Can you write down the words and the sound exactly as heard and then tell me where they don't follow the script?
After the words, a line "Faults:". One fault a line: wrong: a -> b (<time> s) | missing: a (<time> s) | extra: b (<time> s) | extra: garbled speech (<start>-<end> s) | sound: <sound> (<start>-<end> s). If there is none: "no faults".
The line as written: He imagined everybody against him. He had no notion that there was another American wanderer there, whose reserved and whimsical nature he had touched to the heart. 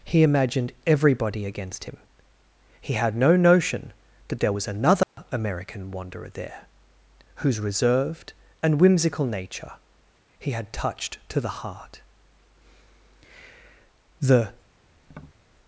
He imagined everybody against him. He had no notion that there was another American wanderer there, whose reserved and whimsical nature he had touched to the heart. The
Faults:
sound: dropout (5.0-5.2 s)
extra: The (14.2 s)
sound: tap (15.0-15.4 s)